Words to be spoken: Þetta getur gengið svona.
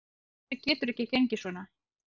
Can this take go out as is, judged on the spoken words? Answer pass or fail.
fail